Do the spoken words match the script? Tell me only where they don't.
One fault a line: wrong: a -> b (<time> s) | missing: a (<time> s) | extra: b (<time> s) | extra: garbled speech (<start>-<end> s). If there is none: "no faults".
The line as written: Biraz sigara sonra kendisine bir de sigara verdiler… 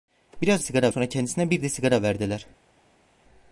no faults